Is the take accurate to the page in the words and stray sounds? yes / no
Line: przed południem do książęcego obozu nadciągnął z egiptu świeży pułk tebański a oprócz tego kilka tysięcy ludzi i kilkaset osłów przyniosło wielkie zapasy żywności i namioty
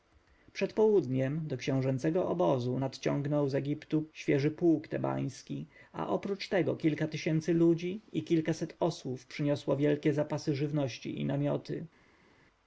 yes